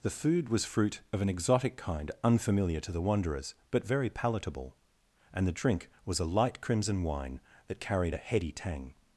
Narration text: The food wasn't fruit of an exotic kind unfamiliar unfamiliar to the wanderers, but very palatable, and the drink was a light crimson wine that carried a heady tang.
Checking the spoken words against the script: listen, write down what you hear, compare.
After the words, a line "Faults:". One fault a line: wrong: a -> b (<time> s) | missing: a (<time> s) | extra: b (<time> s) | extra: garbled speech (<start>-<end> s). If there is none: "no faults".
The food was fruit of an exotic kind unfamiliar to the wanderers, but very palatable, and the drink was a light crimson wine that carried a heady tang.
Faults:
wrong: wasn't -> was (0.5 s)
missing: unfamiliar (2.8 s)